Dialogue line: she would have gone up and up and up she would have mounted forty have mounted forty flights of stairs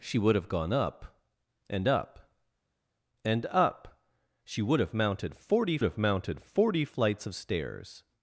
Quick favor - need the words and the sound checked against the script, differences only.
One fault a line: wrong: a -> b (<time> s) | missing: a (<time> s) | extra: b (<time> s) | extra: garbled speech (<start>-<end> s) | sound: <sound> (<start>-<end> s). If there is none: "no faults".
no faults